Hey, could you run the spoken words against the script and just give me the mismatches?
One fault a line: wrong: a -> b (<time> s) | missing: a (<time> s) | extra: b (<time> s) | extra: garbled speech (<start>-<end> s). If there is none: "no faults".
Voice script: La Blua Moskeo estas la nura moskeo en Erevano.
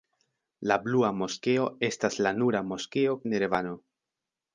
no faults